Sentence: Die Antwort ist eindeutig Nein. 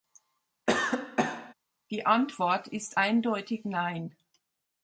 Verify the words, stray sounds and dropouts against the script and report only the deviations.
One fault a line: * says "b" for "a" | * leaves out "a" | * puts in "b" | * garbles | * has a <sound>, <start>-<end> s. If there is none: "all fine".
* has a cough, 0.7-1.5 s